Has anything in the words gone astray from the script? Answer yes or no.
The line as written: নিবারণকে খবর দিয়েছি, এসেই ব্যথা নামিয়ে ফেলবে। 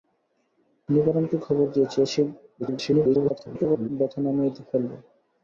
yes